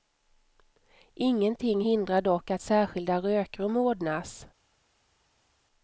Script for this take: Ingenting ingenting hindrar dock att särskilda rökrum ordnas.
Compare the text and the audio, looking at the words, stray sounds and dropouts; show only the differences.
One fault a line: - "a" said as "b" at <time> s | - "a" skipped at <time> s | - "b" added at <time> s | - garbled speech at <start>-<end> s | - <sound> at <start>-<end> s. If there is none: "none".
- "ingenting" skipped at 1.8 s